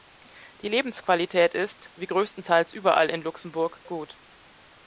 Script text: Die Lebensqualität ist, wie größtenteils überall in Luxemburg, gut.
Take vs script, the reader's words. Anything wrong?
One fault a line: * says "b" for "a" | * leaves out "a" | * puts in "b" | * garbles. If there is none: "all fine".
all fine